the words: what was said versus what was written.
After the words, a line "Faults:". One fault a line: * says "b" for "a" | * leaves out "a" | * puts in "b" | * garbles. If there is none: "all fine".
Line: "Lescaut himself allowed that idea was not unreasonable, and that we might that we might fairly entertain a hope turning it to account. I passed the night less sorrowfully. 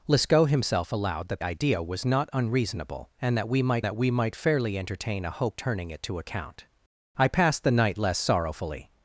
"Lescaut himself allowed that idea was not unreasonable, and that we might that we might fairly entertain a hope turning it to account. I passed the night less sorrowfully.
Faults:
all fine